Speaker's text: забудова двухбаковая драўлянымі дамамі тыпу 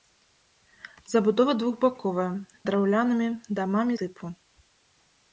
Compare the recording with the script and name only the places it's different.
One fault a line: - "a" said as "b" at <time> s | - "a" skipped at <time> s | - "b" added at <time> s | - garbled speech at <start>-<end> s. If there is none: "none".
none